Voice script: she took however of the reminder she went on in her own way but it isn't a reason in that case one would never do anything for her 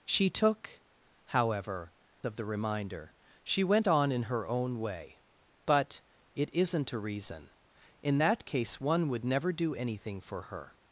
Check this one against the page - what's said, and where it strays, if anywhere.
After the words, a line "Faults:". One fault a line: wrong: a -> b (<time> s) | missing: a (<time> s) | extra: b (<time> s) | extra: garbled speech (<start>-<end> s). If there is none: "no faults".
she took however of the reminder she went on in her own way but it isn't a reason in that case one would never do anything for her
Faults:
no faults